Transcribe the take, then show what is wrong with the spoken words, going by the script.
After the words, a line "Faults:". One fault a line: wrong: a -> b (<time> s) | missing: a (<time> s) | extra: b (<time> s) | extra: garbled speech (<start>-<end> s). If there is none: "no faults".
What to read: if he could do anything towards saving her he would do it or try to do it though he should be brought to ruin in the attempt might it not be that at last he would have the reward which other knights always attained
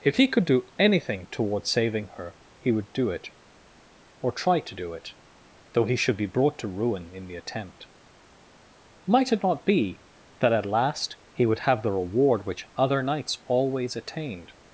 if he could do anything towards saving her he would do it or try to do it though he should be brought to ruin in the attempt might it not be that at last he would have the reward which other knights always attained
Faults:
no faults